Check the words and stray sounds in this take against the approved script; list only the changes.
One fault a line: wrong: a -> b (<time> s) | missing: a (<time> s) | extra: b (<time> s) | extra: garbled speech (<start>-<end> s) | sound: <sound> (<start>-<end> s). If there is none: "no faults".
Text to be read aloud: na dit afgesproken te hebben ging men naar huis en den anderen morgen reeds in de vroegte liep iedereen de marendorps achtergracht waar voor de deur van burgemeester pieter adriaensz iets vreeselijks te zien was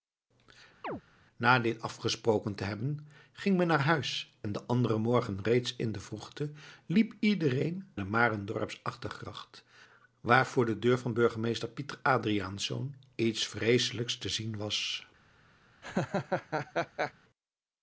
sound: chirp (0.8-1.0 s)
sound: laugh (15.8-17.1 s)